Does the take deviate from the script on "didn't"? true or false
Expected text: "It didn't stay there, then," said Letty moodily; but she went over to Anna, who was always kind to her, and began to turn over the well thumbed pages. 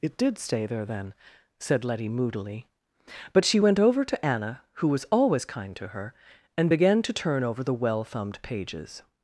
true